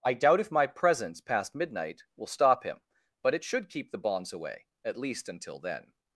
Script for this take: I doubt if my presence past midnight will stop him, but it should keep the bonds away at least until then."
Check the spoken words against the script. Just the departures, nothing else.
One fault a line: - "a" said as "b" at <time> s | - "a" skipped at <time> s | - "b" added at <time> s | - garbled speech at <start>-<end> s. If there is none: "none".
none